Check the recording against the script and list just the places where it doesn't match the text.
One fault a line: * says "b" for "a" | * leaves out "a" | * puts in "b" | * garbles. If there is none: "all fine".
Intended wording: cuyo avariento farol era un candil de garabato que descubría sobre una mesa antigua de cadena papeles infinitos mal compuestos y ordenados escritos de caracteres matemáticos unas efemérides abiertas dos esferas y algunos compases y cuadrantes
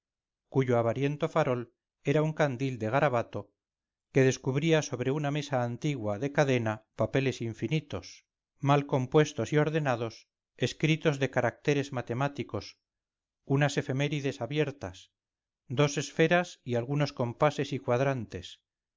all fine